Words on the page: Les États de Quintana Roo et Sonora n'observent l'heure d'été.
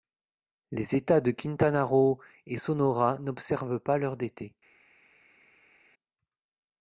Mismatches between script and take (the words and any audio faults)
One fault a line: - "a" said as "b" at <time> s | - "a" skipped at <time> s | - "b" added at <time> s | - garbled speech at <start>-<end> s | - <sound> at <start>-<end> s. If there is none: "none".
- "pas" added at 3.8 s